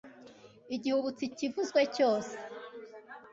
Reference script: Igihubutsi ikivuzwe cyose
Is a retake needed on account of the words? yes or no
no